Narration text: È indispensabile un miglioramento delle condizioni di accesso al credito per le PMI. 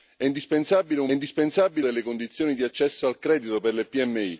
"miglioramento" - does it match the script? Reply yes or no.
no